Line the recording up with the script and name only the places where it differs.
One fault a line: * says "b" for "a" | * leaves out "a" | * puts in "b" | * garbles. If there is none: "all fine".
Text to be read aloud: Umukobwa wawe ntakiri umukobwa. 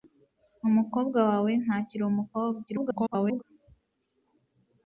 * garbles